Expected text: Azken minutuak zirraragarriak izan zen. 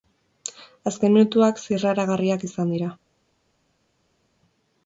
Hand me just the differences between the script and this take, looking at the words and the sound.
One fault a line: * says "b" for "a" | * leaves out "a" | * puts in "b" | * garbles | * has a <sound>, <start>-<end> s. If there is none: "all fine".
* says "dira" for "zen"